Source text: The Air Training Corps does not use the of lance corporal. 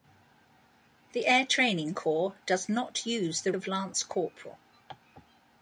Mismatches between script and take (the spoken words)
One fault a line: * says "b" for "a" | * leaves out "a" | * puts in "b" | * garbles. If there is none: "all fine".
all fine